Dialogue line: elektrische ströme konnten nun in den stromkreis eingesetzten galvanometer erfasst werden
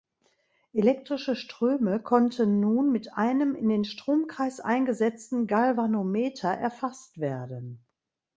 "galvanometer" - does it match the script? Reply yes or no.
yes